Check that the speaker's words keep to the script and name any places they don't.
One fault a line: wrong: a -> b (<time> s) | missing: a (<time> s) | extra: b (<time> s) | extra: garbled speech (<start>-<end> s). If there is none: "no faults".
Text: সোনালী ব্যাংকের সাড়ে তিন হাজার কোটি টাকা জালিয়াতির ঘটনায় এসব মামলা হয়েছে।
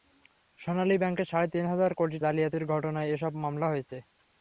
missing: টাকা (2.2 s)